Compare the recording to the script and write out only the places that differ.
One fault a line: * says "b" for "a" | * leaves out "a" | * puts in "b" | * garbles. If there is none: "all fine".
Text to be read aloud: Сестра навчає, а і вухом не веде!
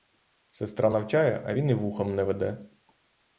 * puts in "він"